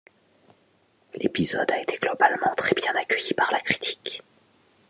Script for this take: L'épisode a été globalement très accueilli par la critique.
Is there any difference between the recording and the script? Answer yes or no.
yes